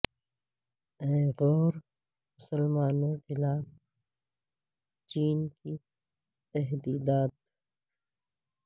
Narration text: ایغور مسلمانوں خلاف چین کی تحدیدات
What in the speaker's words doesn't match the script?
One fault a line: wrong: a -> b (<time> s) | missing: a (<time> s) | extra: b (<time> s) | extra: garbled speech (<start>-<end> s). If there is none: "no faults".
no faults